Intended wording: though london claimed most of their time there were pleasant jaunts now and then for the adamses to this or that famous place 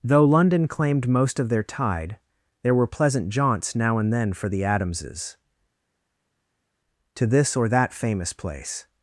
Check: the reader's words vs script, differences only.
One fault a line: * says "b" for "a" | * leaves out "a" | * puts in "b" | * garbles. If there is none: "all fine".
* says "tide" for "time"